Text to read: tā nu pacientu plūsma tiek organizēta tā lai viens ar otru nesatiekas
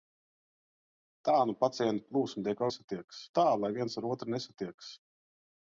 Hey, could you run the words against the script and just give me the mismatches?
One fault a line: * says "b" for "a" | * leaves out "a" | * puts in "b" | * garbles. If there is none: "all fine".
* says "nesatiekas" for "organizēta"